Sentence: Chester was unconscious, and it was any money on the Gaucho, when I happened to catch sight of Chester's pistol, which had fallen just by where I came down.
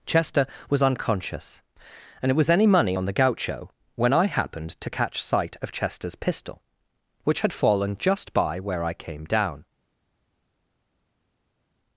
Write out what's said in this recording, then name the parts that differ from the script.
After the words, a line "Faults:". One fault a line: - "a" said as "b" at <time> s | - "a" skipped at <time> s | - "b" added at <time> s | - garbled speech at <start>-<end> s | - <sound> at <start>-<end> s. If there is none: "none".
Chester was unconscious, and it was any money on the Gaucho, when I happened to catch sight of Chester's pistol, which had fallen just by where I came down.
Faults:
none